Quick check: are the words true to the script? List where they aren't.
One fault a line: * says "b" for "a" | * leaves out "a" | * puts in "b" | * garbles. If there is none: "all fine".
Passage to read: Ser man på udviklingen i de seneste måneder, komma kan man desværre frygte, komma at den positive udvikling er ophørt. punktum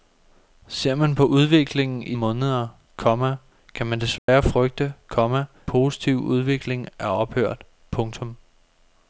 * leaves out "de seneste"
* leaves out "at den"